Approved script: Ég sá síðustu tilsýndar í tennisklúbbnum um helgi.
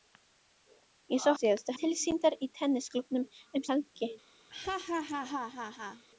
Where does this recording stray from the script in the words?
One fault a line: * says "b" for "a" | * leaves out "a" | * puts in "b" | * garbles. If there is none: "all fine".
all fine